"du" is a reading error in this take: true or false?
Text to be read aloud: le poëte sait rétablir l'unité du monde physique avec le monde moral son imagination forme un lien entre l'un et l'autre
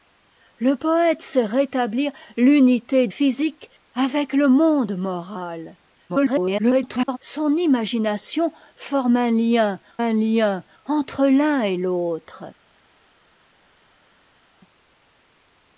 true